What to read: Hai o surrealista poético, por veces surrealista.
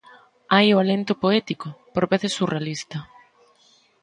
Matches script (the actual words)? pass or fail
fail